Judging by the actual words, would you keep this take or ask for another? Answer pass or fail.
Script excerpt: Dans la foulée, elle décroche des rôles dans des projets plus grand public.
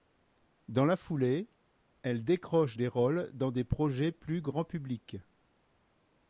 pass